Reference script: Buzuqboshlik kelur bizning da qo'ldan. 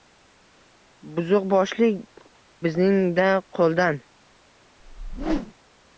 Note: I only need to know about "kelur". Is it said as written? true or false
false